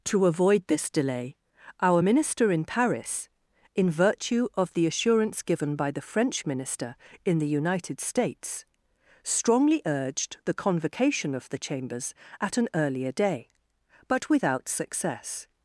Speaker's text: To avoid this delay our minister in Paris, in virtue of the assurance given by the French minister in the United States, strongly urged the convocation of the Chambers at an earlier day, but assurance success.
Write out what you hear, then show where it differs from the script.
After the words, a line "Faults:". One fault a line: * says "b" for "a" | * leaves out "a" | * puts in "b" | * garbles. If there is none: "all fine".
To avoid this delay our minister in Paris, in virtue of the assurance given by the French minister in the United States, strongly urged the convocation of the Chambers at an earlier day, but without success.
Faults:
* says "without" for "assurance"